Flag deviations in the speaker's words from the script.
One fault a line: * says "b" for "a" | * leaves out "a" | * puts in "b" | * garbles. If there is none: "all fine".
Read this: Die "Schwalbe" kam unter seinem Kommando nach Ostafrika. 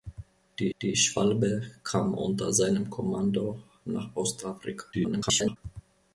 * puts in "die"
* garbles